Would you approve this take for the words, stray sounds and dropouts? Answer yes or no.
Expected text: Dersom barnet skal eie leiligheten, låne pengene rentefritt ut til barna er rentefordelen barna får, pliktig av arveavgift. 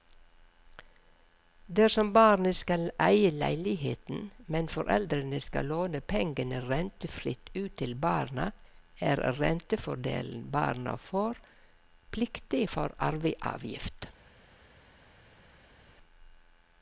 no